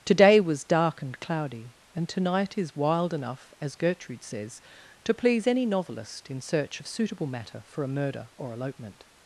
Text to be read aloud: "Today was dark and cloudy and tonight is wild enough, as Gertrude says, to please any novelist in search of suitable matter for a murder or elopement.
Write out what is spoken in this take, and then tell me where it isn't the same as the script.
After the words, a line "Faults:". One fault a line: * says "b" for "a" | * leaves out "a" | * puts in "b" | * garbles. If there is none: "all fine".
"Today was dark and cloudy and tonight is wild enough, as Gertrude says, to please any novelist in search of suitable matter for a murder or elopement.
Faults:
all fine